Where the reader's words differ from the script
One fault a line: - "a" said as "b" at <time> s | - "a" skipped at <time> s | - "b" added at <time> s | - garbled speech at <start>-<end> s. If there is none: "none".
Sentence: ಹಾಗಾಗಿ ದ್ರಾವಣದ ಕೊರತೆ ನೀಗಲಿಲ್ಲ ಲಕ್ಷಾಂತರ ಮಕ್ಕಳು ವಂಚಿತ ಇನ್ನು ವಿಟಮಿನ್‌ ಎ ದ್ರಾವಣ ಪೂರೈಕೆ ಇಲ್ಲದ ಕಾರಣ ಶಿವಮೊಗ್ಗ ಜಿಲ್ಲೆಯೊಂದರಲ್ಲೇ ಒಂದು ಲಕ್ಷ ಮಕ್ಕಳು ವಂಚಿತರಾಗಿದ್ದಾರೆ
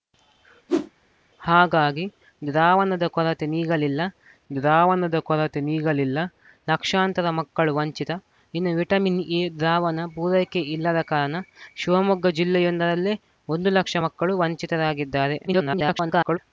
- "ದ್ರಾವಣದ ಕೊರತೆ ನೀಗಲಿಲ್ಲ" added at 4.5 s
- garbled speech at 15.5-16.4 s